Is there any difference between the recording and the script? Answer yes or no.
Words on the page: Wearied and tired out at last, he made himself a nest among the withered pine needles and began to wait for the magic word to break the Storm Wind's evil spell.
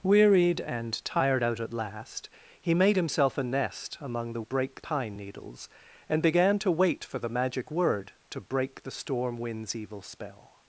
yes